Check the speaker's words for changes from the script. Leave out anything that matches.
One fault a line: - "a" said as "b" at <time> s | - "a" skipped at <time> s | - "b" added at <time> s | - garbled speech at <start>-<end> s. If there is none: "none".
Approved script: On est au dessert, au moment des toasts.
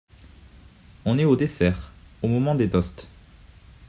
none